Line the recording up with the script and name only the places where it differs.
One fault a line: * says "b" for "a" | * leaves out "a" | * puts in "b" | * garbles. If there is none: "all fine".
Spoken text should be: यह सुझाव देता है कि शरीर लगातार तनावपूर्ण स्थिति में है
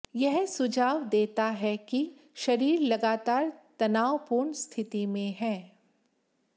all fine